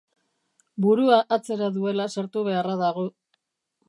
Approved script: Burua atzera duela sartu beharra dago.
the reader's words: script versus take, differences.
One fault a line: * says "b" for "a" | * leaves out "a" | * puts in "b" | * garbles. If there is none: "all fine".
all fine